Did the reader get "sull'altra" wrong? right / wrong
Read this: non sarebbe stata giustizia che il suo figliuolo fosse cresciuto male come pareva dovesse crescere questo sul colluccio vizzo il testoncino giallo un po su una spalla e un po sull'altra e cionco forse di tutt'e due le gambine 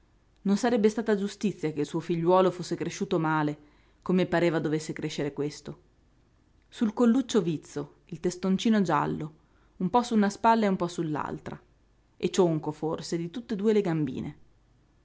right